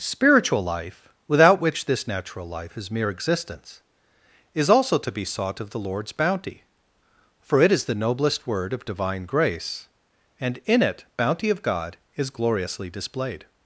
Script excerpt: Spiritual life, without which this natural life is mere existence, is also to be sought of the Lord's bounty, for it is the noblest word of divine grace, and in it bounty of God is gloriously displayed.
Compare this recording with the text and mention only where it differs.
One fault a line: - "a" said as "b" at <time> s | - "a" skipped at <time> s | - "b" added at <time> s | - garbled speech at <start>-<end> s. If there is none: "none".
none